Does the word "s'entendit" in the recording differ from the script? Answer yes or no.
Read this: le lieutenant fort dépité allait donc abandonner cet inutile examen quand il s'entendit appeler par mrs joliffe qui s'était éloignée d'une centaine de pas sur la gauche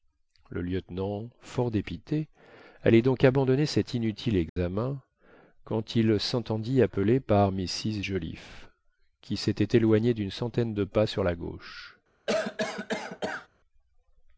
no